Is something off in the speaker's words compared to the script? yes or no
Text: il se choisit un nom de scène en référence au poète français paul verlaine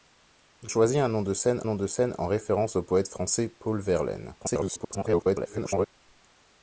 yes